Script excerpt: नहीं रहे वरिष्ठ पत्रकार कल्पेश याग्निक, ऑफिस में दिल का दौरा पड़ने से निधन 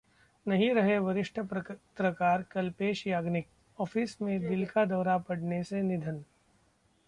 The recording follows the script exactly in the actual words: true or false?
true